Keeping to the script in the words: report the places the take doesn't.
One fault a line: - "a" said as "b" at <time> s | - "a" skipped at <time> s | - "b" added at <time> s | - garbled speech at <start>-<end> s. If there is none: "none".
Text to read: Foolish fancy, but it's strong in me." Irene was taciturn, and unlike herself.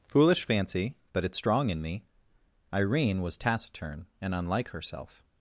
none